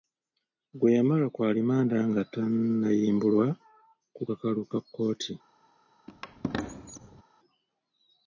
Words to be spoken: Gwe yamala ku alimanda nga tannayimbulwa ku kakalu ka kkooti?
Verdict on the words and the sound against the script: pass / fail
fail